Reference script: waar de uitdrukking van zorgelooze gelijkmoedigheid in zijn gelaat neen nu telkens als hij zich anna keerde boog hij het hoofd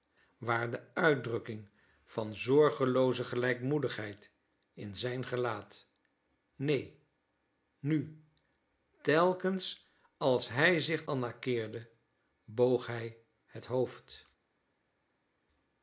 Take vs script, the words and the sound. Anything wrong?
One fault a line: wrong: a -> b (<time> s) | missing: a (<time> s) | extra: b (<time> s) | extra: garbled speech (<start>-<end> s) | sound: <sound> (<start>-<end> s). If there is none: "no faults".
no faults